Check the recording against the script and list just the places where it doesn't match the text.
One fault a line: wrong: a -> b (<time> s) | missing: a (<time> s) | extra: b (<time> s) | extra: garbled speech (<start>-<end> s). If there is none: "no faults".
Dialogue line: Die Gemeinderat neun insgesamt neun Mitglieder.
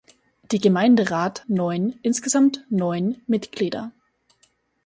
no faults